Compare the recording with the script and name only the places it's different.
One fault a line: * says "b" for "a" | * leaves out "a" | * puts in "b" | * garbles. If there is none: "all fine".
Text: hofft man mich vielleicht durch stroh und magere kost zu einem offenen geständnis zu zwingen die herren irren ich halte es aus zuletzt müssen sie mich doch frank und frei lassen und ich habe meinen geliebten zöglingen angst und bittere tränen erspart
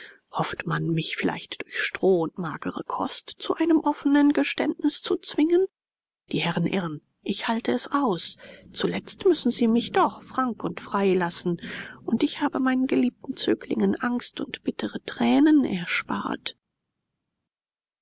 all fine